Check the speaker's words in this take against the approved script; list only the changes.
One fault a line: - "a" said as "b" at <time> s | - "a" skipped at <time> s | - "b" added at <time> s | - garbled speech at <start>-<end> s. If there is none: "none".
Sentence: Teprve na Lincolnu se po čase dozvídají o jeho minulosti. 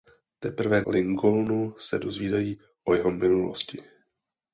- "na" skipped at 0.8 s
- "po čase" skipped at 2.0 s